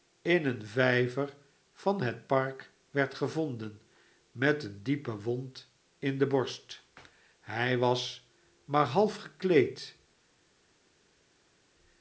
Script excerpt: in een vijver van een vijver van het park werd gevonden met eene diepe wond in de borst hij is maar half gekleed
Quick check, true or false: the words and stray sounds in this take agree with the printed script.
false